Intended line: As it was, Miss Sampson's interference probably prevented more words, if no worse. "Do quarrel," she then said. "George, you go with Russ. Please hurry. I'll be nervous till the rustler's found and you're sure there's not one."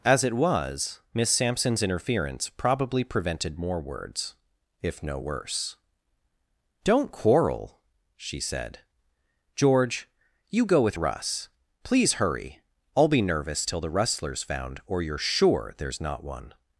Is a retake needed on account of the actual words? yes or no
yes